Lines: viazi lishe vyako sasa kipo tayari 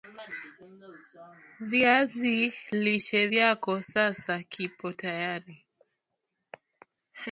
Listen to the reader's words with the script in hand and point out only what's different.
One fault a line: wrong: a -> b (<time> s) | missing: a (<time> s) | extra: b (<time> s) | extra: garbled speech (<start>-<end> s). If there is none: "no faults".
no faults